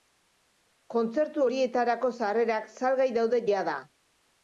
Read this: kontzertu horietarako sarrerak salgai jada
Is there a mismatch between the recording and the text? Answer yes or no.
yes